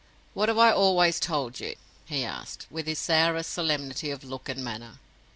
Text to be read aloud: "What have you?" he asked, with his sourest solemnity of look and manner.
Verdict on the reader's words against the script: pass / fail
fail